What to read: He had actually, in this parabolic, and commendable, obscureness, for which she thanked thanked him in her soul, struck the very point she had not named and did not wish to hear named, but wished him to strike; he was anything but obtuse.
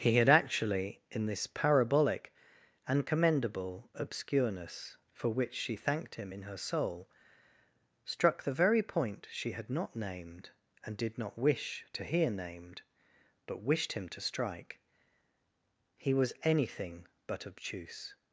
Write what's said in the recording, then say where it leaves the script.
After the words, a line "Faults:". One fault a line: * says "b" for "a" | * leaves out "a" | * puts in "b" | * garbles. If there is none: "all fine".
He had actually, in this parabolic, and commendable, obscureness, for which she thanked him in her soul, struck the very point she had not named and did not wish to hear named, but wished him to strike; he was anything but obtuse.
Faults:
* leaves out "thanked"